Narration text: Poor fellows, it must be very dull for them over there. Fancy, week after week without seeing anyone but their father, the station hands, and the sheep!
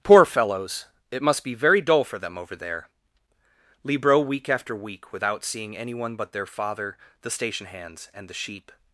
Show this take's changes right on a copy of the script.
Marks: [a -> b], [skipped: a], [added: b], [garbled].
Poor fellows, it must be very dull for them over there. [Fancy, -> Libro] week after week without seeing anyone but their father, the station hands, and the sheep!